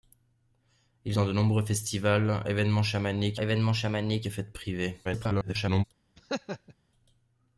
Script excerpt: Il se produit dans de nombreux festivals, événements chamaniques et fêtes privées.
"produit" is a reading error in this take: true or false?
true